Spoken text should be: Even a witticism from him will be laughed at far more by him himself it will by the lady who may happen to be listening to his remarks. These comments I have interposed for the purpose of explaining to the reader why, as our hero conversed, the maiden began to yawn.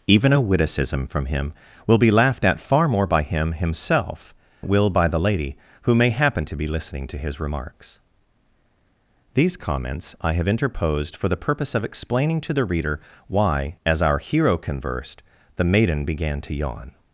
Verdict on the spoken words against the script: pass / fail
pass